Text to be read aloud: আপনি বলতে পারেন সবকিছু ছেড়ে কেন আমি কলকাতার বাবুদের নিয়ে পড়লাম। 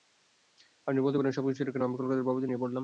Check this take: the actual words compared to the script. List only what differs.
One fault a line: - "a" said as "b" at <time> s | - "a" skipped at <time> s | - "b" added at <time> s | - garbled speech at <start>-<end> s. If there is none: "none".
none